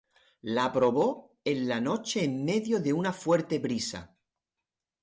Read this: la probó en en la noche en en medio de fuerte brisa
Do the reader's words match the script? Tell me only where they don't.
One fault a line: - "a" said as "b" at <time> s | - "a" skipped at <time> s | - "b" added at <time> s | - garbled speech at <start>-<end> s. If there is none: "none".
- "en" skipped at 1.7 s
- "en" skipped at 2.4 s
- "una" added at 2.9 s